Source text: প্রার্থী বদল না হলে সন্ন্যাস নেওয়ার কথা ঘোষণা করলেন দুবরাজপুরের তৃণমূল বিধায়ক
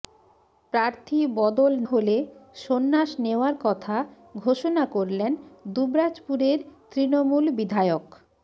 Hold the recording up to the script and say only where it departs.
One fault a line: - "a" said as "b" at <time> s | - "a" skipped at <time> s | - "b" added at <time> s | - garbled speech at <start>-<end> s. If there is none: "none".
- "না" skipped at 1.7 s